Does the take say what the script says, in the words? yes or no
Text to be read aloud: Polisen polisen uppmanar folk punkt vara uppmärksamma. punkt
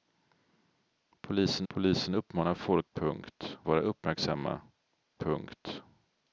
yes